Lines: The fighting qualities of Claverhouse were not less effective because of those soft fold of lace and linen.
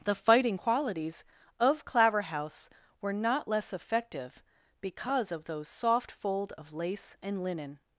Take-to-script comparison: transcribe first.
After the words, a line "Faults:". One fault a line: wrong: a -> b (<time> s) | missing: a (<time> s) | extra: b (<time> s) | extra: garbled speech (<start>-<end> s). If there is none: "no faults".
The fighting qualities of Claverhouse were not less effective because of those soft fold of lace and linen.
Faults:
no faults